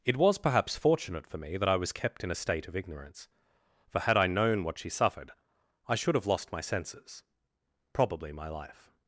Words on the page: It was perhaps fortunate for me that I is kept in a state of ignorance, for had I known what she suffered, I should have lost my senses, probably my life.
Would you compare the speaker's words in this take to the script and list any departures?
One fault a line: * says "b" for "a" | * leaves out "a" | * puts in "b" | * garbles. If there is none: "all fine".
* says "was" for "is"